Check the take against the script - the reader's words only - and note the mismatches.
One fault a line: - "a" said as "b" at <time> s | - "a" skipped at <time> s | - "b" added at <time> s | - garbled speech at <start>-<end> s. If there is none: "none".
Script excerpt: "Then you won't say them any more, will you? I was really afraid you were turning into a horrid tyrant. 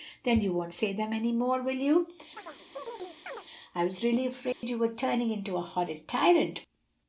none